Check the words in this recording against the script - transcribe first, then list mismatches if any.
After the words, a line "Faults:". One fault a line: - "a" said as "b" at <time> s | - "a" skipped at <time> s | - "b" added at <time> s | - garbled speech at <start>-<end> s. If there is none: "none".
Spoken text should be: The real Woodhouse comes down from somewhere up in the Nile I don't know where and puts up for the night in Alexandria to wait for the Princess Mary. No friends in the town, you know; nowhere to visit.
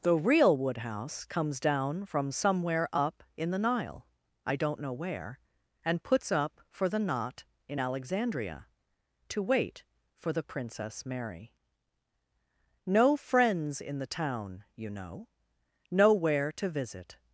The real Woodhouse comes down from somewhere up in the Nile I don't know where and puts up for the knot in Alexandria to wait for the Princess Mary. No friends in the town, you know; nowhere to visit.
Faults:
- "night" said as "knot" at 7.0 s